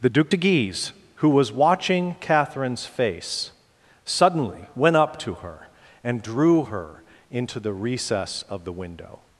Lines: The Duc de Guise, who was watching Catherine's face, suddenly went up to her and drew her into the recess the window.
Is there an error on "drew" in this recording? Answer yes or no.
no